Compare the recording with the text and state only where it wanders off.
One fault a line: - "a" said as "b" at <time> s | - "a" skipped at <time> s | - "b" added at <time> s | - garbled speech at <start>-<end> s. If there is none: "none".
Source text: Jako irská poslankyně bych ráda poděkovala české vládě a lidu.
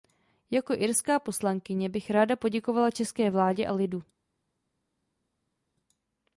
none